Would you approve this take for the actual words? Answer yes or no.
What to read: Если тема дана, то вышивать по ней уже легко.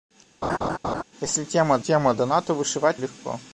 no